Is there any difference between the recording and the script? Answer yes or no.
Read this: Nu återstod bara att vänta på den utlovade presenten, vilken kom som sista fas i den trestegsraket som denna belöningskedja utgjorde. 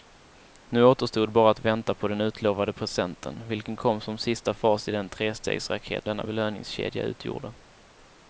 yes